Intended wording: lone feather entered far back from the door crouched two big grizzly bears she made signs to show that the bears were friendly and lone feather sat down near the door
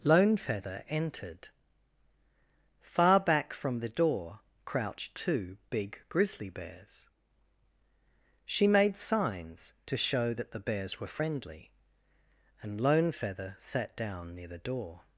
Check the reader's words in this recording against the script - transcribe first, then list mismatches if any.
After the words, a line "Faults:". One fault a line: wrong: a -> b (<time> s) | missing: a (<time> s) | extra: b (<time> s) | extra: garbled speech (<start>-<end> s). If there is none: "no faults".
lone feather entered far back from the door crouched two big grizzly bears she made signs to show that the bears were friendly and lone feather sat down near the door
Faults:
no faults